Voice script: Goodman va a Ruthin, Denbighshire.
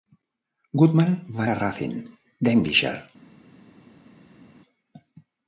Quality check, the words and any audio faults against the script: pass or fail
pass